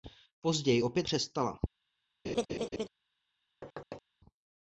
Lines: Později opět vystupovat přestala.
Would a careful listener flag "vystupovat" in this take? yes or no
yes